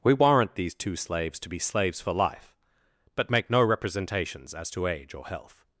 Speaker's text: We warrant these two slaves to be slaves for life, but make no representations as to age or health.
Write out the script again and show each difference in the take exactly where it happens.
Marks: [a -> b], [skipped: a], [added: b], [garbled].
We warrant these two slaves to be slaves for life, but make no representations as to age or health.